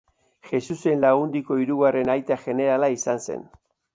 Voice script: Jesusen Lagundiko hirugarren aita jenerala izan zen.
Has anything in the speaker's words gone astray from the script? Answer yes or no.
no